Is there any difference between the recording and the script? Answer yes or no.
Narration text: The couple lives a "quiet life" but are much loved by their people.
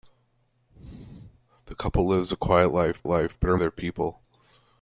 yes